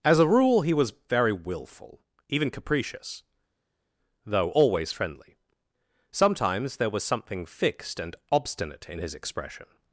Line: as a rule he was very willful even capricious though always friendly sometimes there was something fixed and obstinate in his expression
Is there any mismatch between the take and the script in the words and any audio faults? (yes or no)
no